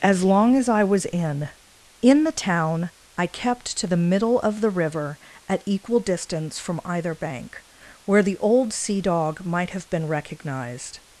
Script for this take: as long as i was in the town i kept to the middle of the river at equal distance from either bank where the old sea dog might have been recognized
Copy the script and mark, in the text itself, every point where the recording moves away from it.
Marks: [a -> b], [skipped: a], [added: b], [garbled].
as long as i was in [added: in] the town i kept to the middle of the river at equal distance from either bank where the old sea dog might have been recognized